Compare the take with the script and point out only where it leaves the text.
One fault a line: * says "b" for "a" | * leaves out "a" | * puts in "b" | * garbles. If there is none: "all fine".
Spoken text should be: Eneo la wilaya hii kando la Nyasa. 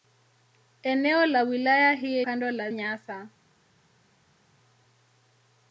all fine